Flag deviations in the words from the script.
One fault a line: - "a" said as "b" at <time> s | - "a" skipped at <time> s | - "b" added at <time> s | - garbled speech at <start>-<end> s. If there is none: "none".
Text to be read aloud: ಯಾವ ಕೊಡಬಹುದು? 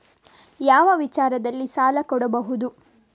- "ವಿಚಾರದಲ್ಲಿ ಸಾಲ" added at 0.9 s